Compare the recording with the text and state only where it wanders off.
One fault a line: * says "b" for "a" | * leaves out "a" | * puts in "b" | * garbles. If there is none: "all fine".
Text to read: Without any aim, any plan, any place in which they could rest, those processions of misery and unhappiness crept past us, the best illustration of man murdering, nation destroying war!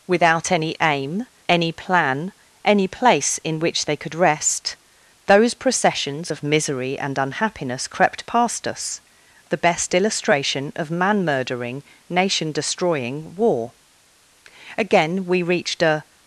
* puts in "Again we reached a"